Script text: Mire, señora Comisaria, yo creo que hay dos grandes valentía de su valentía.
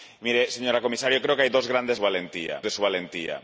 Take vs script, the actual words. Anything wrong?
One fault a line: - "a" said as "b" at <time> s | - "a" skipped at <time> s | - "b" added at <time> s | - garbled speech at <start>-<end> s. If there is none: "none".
none